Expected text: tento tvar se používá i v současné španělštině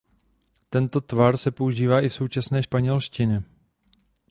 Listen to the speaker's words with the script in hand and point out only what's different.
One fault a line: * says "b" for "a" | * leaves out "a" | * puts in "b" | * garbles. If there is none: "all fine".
all fine